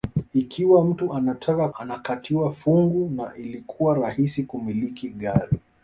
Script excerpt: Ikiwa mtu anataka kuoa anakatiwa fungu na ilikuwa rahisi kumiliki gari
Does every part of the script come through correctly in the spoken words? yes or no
no